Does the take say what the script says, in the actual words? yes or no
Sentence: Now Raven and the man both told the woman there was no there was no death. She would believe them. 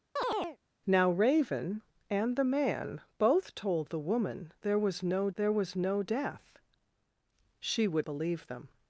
yes